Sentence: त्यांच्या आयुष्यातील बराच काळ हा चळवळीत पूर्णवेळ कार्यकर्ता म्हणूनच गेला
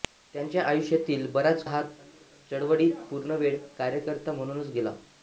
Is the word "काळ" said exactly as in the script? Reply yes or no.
no